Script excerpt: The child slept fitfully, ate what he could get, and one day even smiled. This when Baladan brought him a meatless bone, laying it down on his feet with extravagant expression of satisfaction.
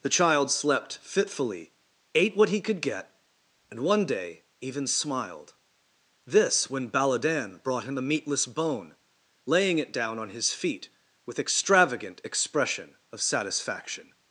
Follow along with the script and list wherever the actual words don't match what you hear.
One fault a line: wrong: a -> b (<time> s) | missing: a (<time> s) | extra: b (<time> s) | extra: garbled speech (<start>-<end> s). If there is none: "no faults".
no faults